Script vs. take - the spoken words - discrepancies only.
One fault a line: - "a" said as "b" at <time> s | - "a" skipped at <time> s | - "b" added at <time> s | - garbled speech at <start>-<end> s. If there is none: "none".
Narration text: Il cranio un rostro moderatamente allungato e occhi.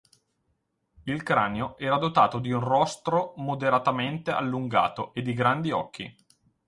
- "era dotato di" added at 1.8 s
- "di grandi" added at 5.2 s